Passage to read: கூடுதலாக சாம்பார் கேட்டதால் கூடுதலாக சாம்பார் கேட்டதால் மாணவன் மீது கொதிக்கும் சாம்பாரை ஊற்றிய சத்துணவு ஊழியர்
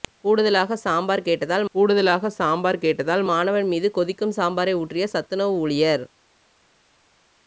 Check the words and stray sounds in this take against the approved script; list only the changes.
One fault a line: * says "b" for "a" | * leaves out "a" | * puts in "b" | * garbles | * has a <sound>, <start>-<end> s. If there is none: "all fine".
all fine